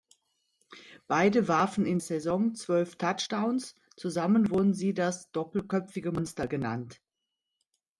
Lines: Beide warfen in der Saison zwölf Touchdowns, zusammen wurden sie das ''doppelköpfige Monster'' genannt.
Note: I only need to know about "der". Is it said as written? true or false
false